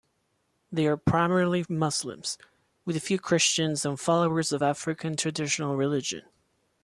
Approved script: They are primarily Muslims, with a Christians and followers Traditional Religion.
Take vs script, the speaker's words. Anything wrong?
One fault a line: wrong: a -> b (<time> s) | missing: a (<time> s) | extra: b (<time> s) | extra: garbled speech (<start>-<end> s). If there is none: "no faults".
extra: few (3.0 s)
extra: of African (4.5 s)